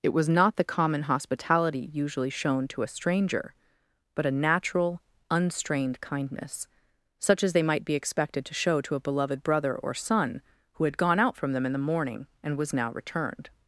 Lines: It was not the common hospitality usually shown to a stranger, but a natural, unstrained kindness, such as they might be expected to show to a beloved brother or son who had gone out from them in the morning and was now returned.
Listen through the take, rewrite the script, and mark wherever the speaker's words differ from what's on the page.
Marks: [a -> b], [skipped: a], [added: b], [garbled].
It was not the common hospitality usually shown to a stranger, but a natural, unstrained kindness, such as they might be expected to show to a beloved brother or son who had gone out from them in the morning and was now returned.